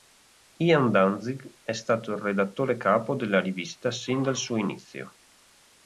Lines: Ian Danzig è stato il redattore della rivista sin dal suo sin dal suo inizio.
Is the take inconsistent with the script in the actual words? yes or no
yes